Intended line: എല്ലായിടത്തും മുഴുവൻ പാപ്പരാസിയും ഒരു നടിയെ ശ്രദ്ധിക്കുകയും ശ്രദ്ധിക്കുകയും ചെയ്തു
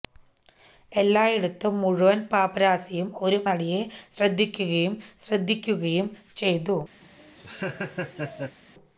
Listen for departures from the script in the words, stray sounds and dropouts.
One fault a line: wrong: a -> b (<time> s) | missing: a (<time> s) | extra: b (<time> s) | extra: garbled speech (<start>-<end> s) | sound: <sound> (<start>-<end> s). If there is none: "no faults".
sound: laugh (7.0-8.6 s)